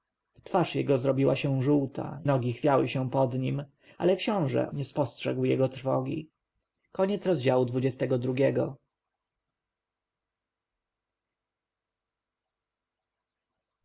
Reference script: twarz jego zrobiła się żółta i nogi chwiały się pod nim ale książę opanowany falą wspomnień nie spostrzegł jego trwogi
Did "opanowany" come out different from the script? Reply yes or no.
yes